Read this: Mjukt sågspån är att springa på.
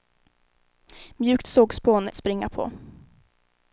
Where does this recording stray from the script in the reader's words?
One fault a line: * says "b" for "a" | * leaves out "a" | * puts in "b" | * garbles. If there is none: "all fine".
all fine